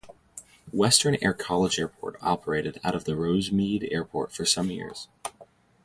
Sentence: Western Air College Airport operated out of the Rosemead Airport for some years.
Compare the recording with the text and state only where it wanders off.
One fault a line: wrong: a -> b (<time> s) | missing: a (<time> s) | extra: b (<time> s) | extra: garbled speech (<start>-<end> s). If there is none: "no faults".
no faults